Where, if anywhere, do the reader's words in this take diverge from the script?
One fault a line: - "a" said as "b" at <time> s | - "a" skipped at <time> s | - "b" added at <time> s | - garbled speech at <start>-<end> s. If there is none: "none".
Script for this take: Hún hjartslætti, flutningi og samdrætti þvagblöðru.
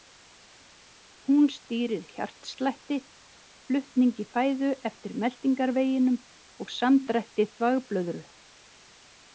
- "stýrir" added at 1.6 s
- "fæðu eftir meltingarveginum" added at 4.4 s